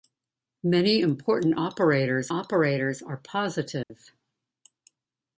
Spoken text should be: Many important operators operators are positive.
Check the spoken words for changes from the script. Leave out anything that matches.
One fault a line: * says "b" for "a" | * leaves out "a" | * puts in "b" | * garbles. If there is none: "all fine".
all fine